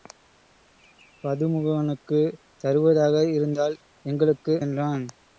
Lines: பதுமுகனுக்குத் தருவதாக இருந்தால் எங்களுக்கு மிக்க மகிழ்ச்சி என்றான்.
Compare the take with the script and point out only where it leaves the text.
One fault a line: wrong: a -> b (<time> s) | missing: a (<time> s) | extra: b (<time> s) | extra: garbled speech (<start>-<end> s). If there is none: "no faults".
missing: மிக்க மகிழ்ச்சி (4.5 s)